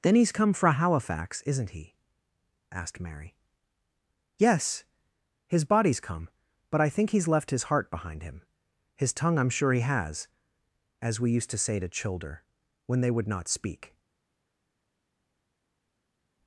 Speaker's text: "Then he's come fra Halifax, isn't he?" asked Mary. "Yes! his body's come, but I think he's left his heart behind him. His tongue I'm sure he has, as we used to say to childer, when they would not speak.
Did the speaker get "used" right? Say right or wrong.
right